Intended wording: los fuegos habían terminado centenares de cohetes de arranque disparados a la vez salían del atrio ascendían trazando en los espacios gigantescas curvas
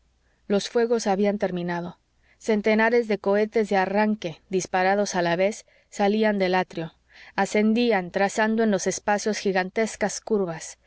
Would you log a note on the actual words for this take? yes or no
no